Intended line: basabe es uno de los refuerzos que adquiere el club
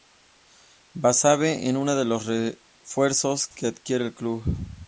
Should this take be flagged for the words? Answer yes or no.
no